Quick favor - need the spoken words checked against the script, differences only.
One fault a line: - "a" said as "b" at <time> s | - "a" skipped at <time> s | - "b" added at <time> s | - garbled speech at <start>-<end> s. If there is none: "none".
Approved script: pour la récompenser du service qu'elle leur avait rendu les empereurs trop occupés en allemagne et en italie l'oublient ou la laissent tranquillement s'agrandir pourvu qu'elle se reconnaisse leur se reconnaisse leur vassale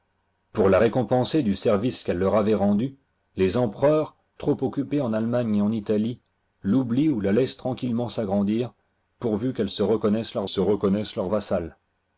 none